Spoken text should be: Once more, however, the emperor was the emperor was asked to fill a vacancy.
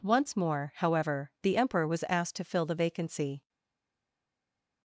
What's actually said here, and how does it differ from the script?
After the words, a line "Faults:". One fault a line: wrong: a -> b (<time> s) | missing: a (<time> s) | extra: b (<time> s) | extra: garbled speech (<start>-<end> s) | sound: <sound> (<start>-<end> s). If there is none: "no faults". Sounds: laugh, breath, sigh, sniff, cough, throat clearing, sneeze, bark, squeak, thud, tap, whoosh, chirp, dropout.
Once more, however, the emperor was asked to fill the vacancy.
Faults:
missing: the emperor was (2.0 s)
wrong: a -> the (2.6 s)